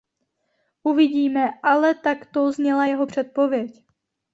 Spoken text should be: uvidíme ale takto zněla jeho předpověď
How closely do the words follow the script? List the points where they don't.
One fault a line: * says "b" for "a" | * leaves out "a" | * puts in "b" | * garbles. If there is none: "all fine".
all fine